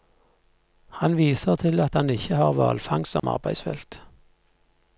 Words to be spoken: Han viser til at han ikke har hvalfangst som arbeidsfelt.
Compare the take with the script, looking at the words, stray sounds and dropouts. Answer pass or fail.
fail